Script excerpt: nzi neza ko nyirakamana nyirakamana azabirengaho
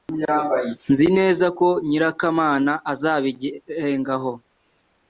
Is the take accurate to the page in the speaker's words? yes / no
no